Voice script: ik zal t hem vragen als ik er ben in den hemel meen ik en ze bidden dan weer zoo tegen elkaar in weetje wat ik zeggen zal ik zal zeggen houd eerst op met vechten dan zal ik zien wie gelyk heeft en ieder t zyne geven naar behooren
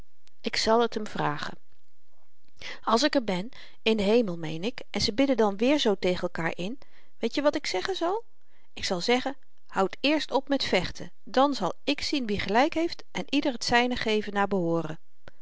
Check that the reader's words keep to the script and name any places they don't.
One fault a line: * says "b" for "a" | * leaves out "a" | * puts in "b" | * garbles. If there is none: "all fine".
all fine